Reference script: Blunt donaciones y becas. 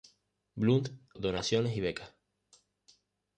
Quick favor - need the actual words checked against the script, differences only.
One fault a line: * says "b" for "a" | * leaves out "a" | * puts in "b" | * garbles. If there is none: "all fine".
all fine